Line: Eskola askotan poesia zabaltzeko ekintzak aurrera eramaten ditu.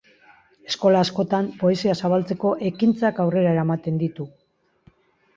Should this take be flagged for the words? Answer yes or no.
no